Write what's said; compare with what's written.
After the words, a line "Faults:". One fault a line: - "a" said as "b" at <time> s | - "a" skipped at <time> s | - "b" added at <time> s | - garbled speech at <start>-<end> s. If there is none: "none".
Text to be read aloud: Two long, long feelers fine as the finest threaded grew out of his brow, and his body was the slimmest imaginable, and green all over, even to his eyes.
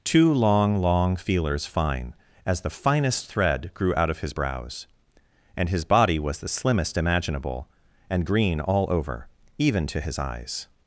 Two long, long feelers fine as the finest thread grew out of his brows, and his body was the slimmest imaginable, and green all over, even to his eyes.
Faults:
- "threaded" said as "thread" at 3.3 s
- "brow" said as "brows" at 4.3 s